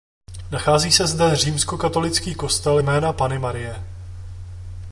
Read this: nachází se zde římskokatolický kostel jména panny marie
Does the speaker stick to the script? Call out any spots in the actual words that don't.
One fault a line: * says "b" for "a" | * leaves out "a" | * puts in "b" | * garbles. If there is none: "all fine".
all fine